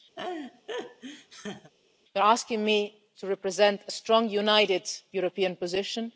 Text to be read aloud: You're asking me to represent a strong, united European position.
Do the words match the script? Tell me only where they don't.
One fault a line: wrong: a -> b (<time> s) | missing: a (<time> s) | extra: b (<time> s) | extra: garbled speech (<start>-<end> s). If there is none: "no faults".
no faults